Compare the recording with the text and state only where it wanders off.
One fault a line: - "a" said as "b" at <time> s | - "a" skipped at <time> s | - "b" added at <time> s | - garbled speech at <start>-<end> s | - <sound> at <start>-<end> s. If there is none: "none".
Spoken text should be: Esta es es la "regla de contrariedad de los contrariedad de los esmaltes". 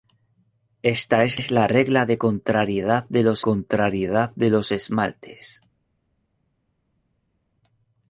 none